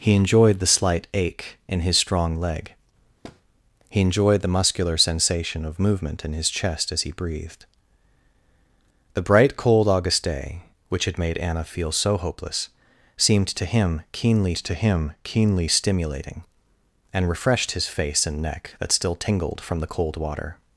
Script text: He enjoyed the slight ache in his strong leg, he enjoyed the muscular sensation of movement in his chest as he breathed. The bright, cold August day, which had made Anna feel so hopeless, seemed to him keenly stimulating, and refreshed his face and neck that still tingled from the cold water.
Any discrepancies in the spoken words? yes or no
yes